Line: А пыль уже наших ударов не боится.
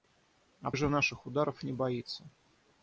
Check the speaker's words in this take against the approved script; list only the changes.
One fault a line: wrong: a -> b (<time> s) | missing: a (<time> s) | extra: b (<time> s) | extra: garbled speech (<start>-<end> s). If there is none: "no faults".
missing: пыль (0.7 s)